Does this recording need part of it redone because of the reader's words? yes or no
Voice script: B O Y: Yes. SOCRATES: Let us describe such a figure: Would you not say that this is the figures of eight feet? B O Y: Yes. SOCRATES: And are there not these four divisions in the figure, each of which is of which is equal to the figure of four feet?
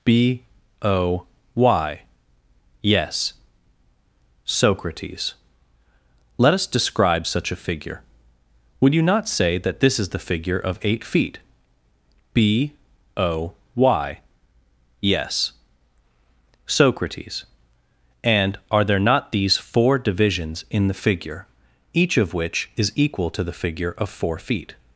yes